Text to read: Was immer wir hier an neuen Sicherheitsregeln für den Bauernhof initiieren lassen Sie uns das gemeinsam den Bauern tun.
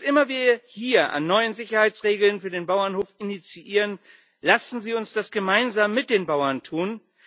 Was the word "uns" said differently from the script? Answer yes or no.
no